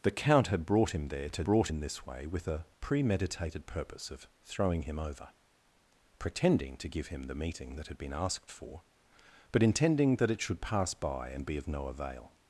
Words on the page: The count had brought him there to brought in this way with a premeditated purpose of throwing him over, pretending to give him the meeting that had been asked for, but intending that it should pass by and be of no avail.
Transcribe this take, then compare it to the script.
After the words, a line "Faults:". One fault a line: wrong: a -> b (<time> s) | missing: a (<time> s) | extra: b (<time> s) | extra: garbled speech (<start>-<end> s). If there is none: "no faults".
The count had brought him there to brought in this way with a premeditated purpose of throwing him over, pretending to give him the meeting that had been asked for, but intending that it should pass by and be of no avail.
Faults:
no faults